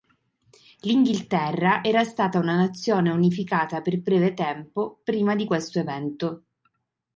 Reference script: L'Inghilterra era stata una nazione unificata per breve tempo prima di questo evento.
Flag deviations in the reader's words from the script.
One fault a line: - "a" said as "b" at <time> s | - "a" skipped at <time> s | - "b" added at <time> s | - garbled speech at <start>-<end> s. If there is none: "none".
none